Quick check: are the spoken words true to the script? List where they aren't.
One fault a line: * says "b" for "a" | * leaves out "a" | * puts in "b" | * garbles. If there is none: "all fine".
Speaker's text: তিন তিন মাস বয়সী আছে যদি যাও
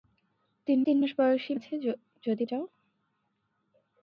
all fine